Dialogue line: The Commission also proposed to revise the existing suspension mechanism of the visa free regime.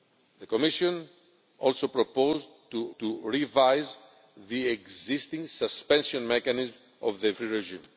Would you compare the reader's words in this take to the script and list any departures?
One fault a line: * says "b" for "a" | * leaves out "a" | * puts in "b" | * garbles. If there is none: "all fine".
* puts in "to"
* leaves out "visa"